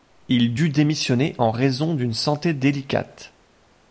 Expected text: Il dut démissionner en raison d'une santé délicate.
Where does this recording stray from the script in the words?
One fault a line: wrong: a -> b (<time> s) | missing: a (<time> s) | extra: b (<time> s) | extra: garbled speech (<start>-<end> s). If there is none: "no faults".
no faults